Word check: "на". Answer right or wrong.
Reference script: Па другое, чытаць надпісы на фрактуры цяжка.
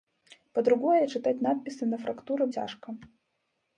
right